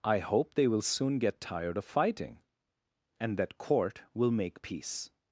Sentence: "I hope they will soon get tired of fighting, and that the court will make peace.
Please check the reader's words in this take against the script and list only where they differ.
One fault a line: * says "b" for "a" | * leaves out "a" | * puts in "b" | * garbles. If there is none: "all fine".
* leaves out "the"